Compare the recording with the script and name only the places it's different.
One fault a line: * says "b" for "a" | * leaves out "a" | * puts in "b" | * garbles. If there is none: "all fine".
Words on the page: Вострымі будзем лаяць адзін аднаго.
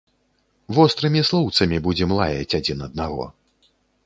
* puts in "слоўцамі"